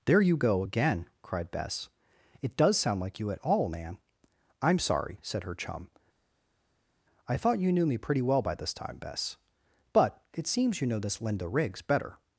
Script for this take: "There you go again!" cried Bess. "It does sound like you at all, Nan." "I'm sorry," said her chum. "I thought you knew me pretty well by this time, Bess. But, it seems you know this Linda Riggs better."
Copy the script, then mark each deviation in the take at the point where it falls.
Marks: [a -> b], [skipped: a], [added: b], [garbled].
"There you go again!" cried Bess. "It does sound like you at all, Nan." "I'm sorry," said her chum. "I thought you knew me pretty well by this time, Bess. But, it seems you know this Linda Riggs better."